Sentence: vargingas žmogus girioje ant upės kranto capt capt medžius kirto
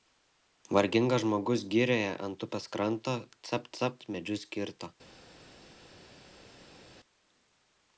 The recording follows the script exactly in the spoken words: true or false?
true